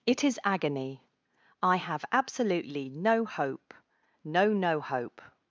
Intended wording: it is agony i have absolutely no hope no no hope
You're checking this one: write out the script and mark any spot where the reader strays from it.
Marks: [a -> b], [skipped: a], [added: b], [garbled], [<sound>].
it is agony i have absolutely no hope no no hope